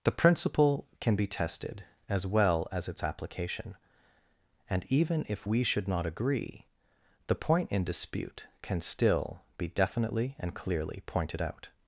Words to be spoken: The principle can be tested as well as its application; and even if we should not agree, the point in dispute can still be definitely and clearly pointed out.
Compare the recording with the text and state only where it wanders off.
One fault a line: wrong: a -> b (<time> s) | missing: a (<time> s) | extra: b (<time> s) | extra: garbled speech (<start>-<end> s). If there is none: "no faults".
no faults